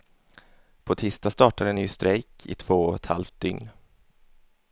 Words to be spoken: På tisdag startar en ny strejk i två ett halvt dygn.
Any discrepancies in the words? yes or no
yes